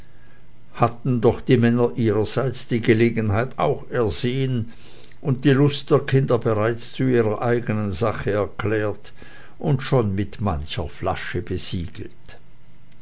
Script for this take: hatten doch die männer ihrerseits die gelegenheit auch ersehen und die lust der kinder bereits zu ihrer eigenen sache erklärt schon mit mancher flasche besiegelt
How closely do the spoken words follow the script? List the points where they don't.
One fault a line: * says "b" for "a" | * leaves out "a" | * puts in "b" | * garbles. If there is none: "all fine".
* puts in "und"